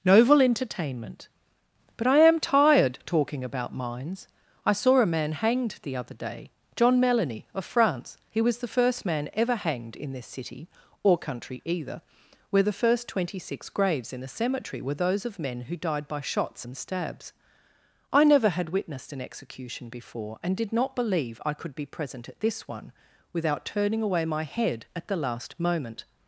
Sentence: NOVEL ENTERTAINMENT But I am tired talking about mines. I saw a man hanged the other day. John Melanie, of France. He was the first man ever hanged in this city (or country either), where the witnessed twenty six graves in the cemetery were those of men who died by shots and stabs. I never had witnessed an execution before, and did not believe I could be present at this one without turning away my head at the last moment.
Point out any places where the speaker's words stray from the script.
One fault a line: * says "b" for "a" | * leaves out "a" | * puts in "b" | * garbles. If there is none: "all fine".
* says "first" for "witnessed"